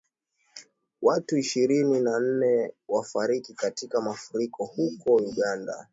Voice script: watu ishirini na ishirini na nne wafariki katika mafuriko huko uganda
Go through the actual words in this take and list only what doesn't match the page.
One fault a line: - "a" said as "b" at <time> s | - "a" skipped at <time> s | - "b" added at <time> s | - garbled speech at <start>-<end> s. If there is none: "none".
- "ishirini na" skipped at 2.2 s